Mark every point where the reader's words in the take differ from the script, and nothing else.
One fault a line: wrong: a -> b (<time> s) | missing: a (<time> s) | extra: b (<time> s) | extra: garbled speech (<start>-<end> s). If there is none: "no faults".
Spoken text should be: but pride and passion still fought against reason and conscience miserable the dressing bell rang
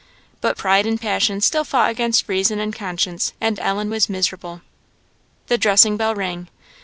extra: and ellen was (3.4 s)